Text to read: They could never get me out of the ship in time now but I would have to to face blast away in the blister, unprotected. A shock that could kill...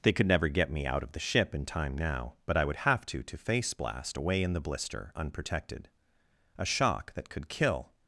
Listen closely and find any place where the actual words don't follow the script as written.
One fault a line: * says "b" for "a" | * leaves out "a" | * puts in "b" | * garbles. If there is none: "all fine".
all fine